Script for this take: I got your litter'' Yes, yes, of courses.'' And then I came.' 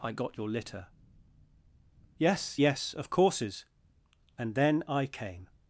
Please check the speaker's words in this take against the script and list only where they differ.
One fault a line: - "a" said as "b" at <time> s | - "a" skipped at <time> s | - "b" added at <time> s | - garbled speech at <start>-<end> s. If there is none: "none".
none